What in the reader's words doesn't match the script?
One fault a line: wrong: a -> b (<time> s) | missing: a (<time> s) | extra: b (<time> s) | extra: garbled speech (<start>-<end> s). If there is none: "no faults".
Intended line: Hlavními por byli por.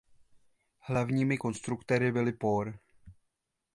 wrong: por -> konstruktéry (1.3 s)